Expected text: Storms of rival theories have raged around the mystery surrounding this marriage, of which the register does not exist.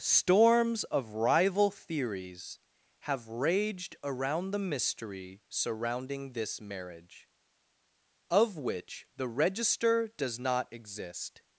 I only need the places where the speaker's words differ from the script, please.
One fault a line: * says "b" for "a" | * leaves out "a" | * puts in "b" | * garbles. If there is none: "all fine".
all fine